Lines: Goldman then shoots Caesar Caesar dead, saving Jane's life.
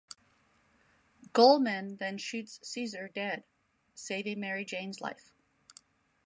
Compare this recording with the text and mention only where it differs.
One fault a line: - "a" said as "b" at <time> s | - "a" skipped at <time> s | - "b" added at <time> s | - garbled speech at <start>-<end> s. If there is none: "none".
- "Caesar" skipped at 3.1 s
- "Mary" added at 4.4 s